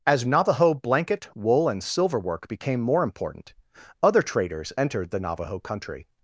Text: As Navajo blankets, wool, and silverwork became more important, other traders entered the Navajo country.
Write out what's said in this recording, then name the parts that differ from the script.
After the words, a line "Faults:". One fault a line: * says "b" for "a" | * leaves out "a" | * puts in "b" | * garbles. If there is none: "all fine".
As Navajo blanket, wool, and silverwork became more important, other traders entered the Navajo country.
Faults:
* says "blanket" for "blankets"